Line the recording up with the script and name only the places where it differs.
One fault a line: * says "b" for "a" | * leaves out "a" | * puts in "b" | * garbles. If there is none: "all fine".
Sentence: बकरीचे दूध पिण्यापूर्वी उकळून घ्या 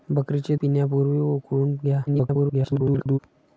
* leaves out "दूध"
* garbles